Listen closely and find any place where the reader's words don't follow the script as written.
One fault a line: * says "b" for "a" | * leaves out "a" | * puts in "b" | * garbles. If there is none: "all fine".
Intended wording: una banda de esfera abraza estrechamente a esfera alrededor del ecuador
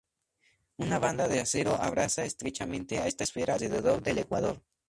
* says "acero" for "esfera"
* puts in "esta"